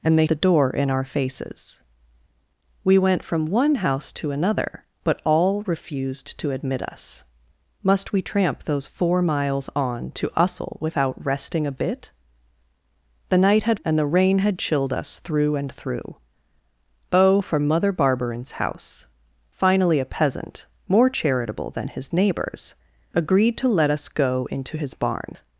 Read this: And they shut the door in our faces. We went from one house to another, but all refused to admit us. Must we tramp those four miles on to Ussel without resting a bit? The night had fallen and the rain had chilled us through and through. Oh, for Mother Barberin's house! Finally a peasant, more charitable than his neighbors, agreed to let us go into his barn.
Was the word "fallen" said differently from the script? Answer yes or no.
yes